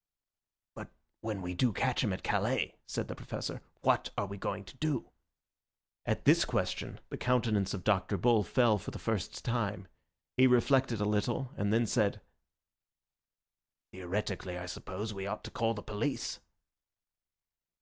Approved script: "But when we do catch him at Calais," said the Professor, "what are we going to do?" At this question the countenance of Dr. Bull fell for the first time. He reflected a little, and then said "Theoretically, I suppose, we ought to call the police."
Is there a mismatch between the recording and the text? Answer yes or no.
no